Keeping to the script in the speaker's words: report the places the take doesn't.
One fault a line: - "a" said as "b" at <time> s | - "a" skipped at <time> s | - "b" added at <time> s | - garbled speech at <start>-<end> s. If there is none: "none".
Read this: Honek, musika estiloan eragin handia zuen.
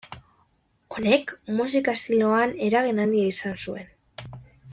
- "izan" added at 3.3 s